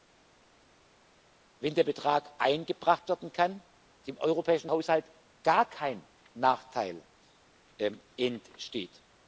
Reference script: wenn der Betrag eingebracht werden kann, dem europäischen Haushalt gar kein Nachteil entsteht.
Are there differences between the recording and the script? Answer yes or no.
no